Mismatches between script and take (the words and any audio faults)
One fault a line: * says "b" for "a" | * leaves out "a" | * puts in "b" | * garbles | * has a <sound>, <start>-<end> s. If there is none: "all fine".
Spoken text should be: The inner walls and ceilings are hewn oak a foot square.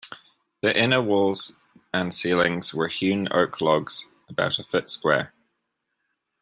* says "were" for "are"
* puts in "logs about"